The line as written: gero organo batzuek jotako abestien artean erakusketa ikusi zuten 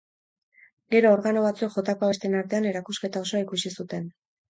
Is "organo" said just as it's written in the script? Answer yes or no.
yes